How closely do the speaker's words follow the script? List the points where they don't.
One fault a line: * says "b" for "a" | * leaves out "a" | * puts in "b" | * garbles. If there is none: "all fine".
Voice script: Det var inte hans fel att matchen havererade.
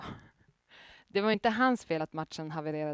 all fine